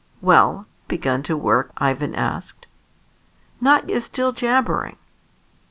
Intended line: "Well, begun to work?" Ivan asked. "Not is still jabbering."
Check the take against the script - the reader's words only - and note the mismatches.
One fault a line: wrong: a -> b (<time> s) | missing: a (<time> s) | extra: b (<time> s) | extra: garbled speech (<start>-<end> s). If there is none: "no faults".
no faults